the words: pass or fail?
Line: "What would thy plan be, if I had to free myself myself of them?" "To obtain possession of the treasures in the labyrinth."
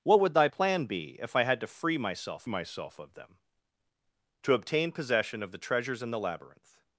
pass